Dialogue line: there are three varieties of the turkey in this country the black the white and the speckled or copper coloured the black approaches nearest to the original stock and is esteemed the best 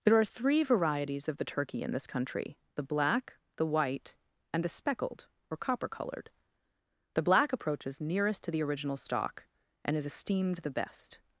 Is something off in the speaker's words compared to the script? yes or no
no